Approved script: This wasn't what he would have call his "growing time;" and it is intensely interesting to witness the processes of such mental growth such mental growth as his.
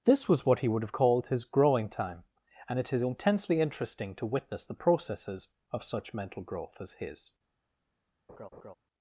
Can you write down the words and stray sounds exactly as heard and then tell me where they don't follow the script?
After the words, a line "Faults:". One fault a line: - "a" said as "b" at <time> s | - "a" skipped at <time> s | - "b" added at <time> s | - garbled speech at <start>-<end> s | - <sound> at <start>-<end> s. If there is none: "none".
This was what he would have called his "growing time;" and it is intensely interesting to witness the processes of such mental growth as his.
Faults:
- "wasn't" said as "was" at 0.3 s
- "call" said as "called" at 0.9 s
- "such mental growth" skipped at 6.8 s
- laugh at 8.3-8.7 s